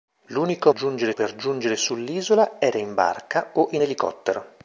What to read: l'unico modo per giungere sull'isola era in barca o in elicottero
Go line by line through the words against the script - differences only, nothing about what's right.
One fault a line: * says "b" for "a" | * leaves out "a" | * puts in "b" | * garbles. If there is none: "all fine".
* says "giungere" for "modo"